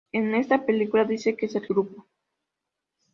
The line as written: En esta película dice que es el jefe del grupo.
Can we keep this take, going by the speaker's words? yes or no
no